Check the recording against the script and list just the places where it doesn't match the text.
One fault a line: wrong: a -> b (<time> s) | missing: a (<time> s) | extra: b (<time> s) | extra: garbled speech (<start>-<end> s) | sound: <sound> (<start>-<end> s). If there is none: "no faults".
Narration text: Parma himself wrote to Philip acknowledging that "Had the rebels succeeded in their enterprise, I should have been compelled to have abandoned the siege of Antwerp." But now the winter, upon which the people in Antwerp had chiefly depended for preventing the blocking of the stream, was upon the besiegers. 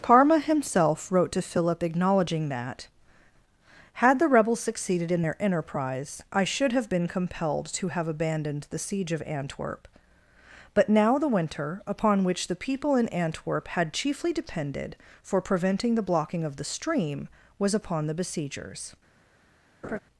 sound: laugh (19.8-20.0 s)